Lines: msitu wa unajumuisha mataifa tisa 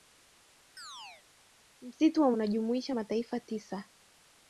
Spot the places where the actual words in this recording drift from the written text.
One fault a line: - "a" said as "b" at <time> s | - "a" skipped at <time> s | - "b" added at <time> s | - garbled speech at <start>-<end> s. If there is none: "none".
none